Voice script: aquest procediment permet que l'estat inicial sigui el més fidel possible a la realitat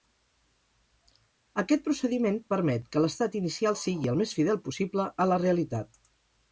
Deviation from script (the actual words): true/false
false